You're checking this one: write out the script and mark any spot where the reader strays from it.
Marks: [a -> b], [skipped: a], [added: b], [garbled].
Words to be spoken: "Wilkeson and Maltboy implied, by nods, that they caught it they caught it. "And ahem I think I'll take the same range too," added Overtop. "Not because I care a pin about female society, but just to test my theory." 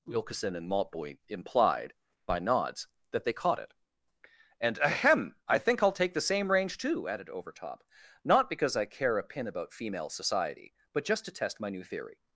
"Wilkeson and Maltboy implied, by nods, that they caught it [skipped: they caught it.] "And ahem I think I'll take the same range too," added Overtop. "Not because I care a pin about female society, but just to test my [added: new] theory."